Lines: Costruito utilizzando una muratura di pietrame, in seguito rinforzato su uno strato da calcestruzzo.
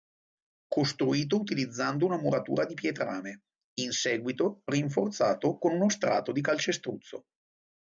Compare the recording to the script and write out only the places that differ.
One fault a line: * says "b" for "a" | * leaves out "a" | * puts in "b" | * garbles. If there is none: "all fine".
* says "con" for "su"
* says "di" for "da"